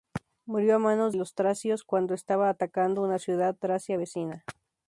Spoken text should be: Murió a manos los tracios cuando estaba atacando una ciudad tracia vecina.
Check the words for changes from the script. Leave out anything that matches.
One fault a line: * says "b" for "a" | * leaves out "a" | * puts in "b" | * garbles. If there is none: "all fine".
all fine